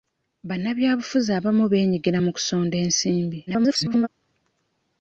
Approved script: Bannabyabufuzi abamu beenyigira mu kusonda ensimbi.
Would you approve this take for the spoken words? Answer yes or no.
no